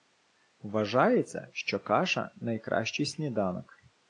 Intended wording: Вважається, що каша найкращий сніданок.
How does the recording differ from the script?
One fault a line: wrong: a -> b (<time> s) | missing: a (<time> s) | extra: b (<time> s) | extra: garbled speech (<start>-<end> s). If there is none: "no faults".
no faults